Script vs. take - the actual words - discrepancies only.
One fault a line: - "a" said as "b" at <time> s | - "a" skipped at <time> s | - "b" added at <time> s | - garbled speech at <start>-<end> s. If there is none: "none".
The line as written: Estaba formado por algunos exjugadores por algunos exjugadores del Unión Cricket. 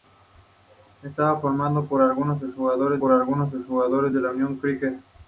none